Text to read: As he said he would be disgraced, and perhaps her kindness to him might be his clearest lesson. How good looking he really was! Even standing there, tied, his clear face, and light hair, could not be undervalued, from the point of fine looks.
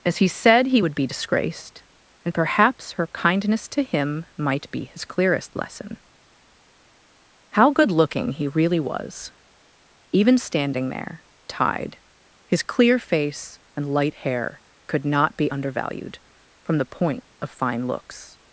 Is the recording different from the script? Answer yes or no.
no